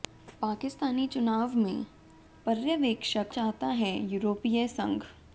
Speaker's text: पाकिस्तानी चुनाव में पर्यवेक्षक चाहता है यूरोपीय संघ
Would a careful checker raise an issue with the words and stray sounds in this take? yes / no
no